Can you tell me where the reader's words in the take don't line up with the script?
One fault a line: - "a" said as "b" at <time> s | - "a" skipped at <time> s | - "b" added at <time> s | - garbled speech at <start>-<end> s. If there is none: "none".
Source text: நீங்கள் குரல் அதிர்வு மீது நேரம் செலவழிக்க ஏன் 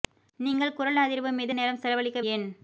none